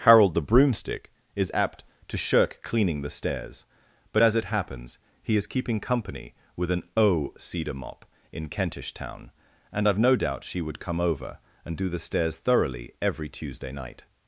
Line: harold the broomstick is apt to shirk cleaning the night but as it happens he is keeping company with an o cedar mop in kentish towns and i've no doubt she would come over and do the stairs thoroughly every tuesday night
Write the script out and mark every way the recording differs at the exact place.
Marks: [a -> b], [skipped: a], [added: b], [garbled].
harold the broomstick is apt to shirk cleaning the [night -> stairs] but as it happens he is keeping company with an o cedar mop in kentish [towns -> town] and i've no doubt she would come over and do the stairs thoroughly every tuesday night